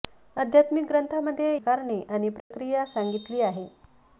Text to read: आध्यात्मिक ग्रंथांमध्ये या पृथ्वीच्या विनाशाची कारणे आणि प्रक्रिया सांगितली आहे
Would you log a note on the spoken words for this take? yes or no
yes